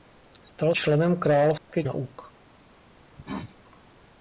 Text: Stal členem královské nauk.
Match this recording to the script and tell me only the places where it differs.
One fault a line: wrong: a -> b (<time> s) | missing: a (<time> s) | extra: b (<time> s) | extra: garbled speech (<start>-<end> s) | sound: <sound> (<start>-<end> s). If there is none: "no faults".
sound: dropout (1.6-1.7 s)
sound: cough (3.1-3.6 s)